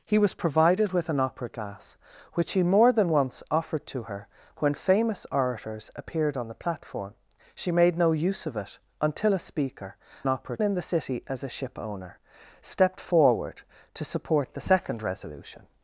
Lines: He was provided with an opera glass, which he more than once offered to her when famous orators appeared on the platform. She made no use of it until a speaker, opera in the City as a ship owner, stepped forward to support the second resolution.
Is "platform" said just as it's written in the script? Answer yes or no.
yes